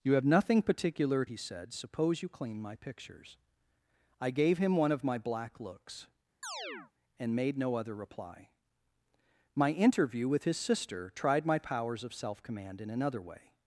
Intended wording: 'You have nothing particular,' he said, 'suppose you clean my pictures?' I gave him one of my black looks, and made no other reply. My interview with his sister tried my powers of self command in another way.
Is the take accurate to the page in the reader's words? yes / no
yes